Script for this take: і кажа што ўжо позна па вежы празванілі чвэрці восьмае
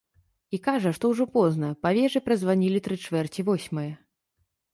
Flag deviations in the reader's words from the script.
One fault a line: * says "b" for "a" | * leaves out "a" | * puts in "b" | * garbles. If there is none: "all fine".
* puts in "тры"